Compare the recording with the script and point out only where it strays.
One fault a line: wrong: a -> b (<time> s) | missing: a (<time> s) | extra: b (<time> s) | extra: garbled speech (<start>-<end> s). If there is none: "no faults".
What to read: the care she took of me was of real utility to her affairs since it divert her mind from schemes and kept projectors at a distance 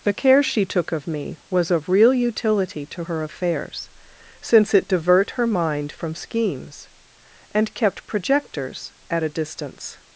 no faults